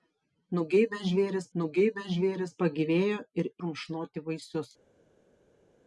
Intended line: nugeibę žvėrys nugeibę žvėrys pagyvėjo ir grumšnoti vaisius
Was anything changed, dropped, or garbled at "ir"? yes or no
no